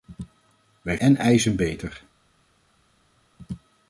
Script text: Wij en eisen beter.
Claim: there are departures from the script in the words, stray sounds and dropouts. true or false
false